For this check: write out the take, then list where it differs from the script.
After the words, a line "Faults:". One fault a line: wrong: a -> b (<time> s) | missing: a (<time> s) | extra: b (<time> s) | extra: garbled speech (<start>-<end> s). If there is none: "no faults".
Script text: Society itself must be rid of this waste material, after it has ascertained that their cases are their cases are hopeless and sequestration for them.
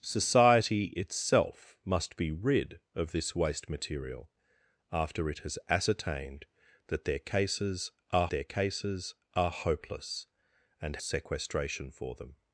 Society itself must be rid of this waste material, after it has ascertained that their cases are their cases are hopeless and sequestration for them.
Faults:
no faults